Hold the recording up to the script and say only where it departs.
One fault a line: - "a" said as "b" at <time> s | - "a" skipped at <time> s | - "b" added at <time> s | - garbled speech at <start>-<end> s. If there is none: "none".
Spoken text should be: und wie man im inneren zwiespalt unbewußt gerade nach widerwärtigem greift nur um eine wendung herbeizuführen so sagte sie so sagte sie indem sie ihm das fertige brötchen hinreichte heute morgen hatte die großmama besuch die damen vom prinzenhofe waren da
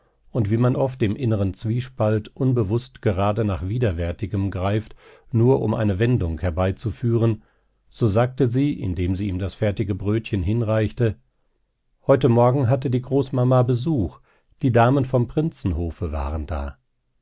- "oft" added at 0.8 s
- "so sagte sie" skipped at 8.7 s